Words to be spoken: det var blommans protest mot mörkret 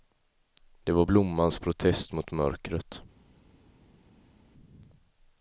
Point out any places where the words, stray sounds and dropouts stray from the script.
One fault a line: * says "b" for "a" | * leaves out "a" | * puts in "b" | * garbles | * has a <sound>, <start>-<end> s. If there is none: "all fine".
all fine